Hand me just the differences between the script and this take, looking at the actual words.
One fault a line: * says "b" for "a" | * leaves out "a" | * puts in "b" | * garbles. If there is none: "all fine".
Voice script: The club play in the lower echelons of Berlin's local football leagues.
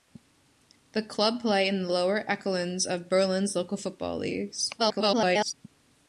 * garbles